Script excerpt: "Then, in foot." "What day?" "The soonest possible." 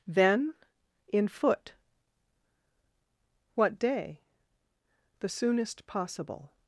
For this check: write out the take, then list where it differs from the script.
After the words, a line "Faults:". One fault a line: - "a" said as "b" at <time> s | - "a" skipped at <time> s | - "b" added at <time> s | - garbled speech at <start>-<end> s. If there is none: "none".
"Then, in foot." "What day?" "The soonest possible."
Faults:
none